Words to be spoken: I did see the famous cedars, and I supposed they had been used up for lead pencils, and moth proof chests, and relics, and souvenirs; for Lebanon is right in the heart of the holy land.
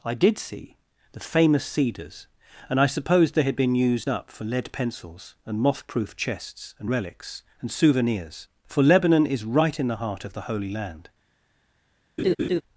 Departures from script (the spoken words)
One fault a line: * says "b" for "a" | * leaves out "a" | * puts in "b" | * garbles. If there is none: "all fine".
all fine